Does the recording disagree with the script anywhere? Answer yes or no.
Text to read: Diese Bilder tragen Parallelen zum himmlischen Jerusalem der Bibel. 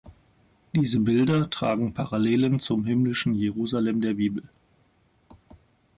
no